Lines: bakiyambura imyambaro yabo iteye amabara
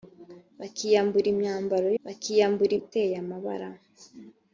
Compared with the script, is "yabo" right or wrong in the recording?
wrong